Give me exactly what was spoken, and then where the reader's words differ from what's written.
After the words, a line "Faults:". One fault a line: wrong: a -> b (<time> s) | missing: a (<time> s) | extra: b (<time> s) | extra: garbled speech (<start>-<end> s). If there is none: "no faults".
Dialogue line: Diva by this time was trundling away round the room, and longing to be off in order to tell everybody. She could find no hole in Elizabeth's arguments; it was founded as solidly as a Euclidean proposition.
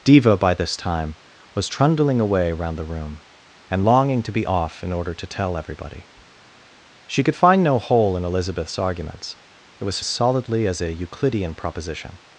Diva by this time was trundling away round the room, and longing to be off in order to tell everybody. She could find no hole in Elizabeth's arguments; it was as solidly as a Euclidean proposition.
Faults:
missing: founded (10.0 s)